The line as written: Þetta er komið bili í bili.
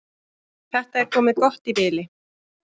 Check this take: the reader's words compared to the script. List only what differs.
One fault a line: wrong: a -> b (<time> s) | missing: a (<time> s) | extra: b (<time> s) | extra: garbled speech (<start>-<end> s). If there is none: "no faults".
wrong: bili -> gott (1.5 s)